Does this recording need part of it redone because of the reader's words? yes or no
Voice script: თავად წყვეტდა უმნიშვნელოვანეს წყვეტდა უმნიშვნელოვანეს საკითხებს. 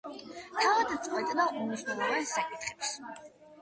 yes